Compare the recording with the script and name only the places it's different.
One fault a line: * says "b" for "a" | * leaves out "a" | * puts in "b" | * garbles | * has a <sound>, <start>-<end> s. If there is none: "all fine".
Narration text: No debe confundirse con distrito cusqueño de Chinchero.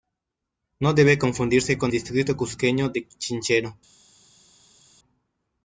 all fine